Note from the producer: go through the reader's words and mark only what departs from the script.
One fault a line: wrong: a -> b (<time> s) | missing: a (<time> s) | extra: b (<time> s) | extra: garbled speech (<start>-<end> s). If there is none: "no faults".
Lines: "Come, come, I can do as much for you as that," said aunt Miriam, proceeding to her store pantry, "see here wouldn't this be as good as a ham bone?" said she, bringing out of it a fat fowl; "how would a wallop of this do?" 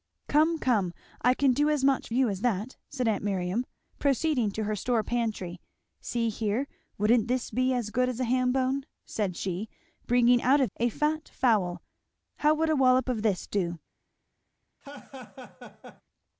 missing: for (2.1 s)
missing: it (10.7 s)